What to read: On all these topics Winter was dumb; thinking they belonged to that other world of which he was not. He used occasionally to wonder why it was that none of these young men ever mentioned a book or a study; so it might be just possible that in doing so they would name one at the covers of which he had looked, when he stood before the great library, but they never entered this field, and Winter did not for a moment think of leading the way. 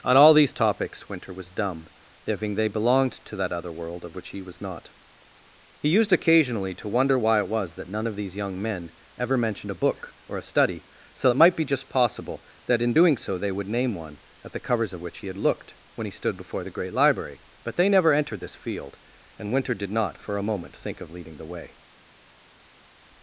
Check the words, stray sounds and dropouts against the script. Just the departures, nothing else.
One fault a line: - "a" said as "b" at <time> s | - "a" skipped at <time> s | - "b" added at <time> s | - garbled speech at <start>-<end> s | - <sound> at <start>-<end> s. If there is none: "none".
none